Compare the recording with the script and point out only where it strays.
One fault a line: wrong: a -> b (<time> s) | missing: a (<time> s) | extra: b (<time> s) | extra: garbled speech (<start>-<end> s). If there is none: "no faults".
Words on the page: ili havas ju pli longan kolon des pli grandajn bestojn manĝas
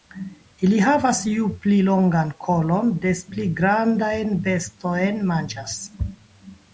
no faults